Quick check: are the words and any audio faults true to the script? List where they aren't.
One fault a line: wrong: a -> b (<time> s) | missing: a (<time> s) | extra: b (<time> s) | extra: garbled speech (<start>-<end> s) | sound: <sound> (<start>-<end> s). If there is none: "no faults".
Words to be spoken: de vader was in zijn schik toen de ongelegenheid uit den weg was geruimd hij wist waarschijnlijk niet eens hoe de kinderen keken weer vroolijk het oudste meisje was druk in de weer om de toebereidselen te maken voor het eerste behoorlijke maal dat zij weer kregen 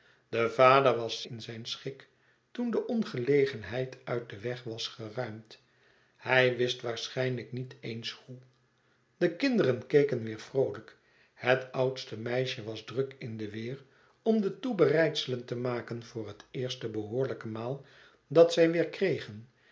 no faults